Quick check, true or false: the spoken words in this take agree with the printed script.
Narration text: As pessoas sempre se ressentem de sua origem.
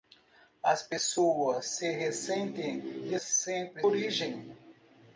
false